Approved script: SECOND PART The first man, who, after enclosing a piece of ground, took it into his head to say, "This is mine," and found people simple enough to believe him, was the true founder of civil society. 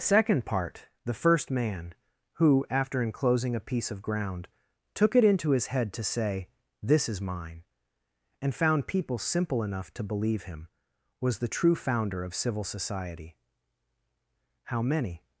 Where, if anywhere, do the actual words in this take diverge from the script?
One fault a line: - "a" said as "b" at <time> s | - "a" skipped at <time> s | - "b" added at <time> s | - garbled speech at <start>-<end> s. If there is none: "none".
- "How many" added at 14.6 s